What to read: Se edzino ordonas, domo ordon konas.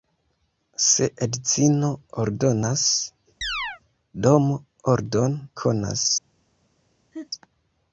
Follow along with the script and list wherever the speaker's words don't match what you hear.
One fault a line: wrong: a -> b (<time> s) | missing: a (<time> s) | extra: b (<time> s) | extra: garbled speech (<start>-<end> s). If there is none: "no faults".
no faults